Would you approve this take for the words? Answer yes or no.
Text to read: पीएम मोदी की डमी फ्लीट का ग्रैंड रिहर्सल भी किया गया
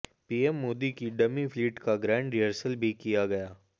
yes